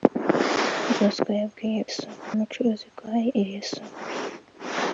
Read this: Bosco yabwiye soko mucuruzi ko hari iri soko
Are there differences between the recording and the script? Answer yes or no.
no